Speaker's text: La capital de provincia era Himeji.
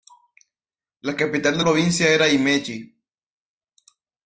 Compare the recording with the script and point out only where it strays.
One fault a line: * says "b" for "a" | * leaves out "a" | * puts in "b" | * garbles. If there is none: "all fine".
all fine